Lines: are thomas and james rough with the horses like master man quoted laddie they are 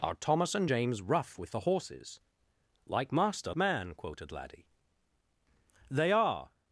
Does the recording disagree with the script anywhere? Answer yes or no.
no